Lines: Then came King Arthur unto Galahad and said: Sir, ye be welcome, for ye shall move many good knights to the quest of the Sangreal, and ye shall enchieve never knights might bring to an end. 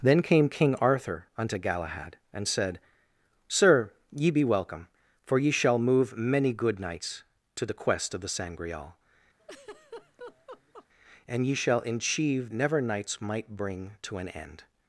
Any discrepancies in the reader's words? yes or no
no